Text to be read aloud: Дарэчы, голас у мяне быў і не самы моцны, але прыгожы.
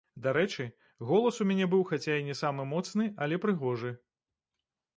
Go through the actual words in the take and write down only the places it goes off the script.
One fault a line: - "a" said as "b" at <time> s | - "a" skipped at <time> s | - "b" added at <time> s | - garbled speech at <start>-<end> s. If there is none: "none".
- "хаця" added at 1.9 s